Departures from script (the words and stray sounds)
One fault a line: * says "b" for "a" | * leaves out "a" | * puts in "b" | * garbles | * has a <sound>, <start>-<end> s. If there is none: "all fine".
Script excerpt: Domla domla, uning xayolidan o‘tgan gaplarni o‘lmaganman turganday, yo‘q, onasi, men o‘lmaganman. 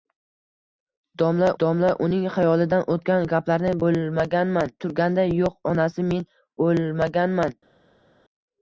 all fine